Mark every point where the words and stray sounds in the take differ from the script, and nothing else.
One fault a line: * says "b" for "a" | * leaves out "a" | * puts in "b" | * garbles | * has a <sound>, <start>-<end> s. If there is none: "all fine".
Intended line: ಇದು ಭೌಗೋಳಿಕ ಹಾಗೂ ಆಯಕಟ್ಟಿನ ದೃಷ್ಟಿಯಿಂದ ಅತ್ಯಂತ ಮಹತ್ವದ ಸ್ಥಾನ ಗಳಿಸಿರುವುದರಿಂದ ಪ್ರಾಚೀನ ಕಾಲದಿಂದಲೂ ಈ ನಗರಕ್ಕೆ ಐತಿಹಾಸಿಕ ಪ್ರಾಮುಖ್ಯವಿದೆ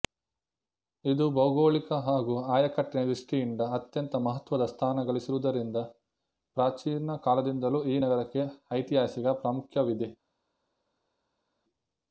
all fine